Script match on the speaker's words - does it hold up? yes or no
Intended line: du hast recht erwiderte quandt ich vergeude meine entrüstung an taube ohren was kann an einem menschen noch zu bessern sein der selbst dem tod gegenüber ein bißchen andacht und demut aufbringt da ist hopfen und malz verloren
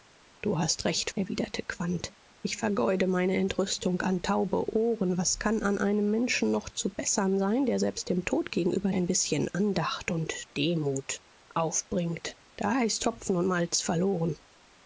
yes